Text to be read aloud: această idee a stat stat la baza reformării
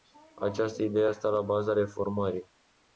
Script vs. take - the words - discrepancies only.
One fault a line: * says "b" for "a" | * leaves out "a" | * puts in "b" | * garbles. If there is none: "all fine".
* leaves out "stat"